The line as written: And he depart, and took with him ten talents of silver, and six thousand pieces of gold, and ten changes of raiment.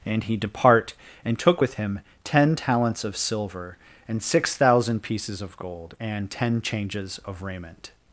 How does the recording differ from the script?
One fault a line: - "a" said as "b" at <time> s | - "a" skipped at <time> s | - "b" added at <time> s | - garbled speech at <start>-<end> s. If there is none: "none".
none